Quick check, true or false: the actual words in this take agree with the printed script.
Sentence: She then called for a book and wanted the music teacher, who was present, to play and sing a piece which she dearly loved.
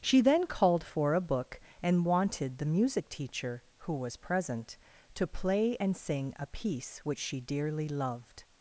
true